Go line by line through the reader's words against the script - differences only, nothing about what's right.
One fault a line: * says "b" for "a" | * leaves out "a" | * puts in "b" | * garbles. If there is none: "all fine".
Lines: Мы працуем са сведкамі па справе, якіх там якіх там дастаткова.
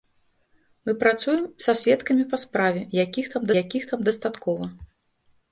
all fine